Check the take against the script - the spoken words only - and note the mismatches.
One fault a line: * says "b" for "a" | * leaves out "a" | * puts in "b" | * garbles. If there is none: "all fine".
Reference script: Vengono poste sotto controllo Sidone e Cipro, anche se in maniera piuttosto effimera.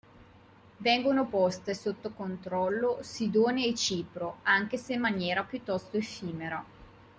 all fine